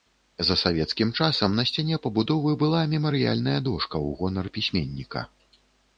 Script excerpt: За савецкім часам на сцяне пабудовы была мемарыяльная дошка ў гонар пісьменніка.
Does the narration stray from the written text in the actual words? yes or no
no